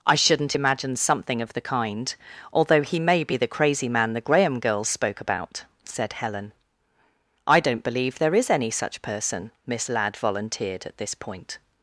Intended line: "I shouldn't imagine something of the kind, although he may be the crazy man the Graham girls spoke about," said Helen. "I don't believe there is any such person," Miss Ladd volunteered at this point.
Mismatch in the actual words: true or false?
false